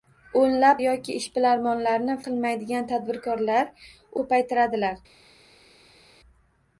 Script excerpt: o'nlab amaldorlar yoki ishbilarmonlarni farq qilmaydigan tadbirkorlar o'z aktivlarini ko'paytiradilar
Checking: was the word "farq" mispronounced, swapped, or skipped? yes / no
yes